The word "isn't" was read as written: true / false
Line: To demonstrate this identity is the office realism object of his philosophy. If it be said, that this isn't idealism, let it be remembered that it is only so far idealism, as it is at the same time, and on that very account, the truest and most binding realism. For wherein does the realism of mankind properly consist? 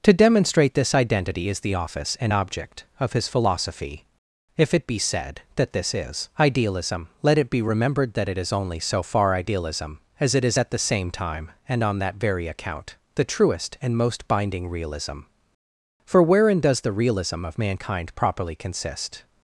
false